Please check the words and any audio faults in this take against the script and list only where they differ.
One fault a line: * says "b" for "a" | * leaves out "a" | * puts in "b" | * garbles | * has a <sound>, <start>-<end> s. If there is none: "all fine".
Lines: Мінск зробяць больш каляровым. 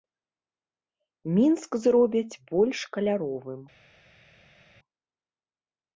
all fine